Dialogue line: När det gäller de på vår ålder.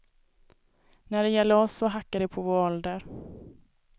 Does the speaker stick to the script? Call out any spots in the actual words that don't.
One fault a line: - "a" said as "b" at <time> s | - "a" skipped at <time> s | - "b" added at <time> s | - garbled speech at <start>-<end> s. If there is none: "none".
- "oss så hackar" added at 1.6 s